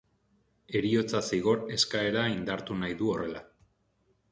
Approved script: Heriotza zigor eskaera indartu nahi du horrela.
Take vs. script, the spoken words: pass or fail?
pass